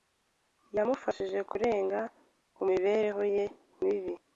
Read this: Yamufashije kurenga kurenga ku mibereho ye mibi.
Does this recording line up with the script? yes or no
no